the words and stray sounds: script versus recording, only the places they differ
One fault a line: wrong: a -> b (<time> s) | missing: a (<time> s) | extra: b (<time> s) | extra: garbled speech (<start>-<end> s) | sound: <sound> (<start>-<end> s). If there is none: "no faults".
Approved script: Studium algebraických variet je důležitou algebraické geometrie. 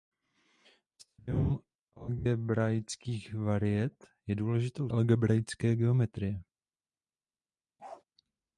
sound: bark (7.8-8.0 s)